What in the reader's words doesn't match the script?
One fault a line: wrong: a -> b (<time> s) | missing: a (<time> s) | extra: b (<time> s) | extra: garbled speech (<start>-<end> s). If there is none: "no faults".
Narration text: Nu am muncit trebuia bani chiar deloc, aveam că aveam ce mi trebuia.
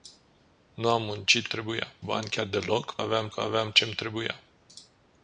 no faults